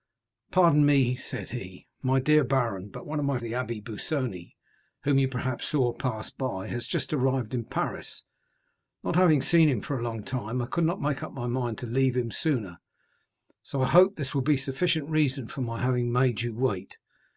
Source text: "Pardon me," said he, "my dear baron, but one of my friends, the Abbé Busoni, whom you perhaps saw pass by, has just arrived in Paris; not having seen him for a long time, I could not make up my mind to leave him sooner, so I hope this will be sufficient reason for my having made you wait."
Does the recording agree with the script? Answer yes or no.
no